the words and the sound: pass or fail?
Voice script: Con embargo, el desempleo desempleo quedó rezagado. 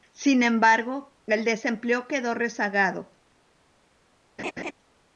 fail